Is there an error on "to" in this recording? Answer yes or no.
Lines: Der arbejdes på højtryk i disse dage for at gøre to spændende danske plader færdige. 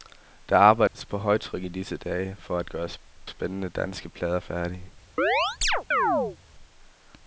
yes